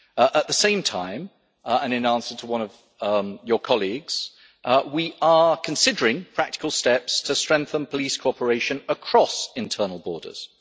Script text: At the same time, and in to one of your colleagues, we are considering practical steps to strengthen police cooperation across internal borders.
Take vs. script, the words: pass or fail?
fail